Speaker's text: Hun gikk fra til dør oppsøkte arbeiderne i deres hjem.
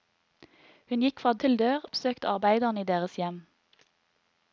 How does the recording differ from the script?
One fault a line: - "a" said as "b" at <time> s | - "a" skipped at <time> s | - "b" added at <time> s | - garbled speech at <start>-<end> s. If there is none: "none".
none